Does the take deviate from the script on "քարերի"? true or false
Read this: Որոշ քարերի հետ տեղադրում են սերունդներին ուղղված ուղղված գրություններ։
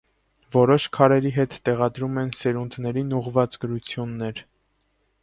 false